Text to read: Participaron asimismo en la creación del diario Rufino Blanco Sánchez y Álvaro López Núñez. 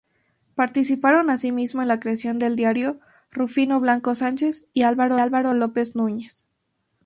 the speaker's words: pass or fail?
fail